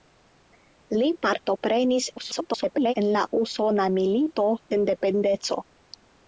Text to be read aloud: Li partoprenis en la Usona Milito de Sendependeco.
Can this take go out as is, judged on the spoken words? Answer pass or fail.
fail